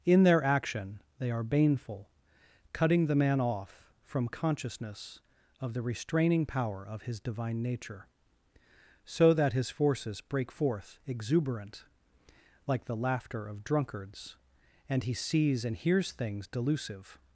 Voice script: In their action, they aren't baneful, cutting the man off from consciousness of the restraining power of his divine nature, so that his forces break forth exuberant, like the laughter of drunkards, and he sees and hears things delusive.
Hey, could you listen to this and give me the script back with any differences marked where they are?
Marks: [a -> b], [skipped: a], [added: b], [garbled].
In their action, they [aren't -> are] baneful, cutting the man off from consciousness of the restraining power of his divine nature, so that his forces break forth exuberant, like the laughter of drunkards, and he sees and hears things delusive.